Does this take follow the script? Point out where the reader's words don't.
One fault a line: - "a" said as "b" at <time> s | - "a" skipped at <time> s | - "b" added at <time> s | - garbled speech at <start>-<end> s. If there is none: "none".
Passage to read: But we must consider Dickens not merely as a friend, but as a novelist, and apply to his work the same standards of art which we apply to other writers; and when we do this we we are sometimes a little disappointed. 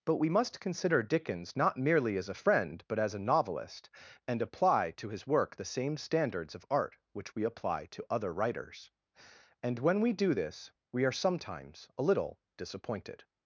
- "we" skipped at 11.0 s